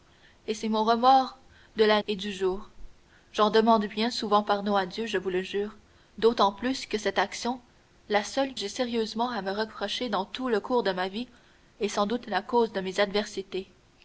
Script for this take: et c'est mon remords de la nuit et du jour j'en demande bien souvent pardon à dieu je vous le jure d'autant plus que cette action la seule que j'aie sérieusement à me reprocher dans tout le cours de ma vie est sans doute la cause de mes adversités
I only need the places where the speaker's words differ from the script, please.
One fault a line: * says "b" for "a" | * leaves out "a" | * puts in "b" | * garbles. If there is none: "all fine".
* leaves out "nuit"
* leaves out "que"